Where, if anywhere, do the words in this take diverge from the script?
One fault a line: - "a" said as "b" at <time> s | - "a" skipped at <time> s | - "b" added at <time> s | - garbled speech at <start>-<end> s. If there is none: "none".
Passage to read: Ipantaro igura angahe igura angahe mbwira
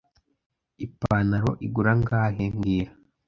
- "igura angahe" skipped at 2.4 s